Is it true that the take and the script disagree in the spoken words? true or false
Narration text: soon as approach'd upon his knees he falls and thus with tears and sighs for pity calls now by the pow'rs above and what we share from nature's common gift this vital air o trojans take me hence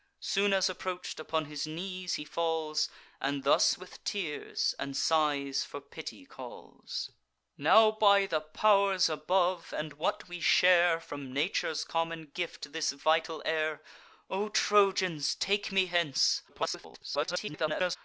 true